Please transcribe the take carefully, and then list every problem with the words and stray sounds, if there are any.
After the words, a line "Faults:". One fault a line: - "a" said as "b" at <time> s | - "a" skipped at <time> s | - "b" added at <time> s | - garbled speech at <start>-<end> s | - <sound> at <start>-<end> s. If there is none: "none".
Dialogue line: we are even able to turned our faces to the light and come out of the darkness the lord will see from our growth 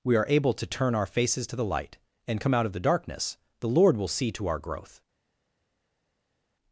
we are able to turn our faces to the light and come out of the darkness the lord will see to our growth
Faults:
- "even" skipped at 0.2 s
- "turned" said as "turn" at 0.7 s
- "from" said as "to" at 4.3 s